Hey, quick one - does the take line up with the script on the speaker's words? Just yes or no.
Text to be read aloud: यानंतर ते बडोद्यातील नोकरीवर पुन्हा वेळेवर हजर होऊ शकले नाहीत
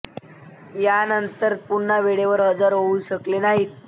no